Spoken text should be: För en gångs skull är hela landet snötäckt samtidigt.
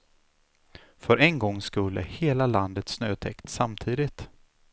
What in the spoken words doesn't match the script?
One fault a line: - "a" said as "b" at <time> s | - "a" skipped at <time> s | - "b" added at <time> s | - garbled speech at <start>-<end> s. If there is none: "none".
none